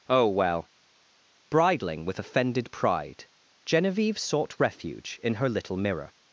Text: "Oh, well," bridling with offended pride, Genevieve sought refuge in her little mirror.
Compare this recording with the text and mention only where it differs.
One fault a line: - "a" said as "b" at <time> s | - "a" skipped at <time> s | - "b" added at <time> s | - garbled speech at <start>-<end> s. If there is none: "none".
none